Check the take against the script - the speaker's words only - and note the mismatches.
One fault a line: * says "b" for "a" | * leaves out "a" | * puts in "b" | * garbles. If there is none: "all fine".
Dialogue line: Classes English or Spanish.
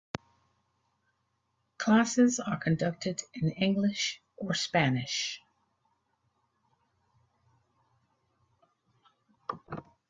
* puts in "are conducted in"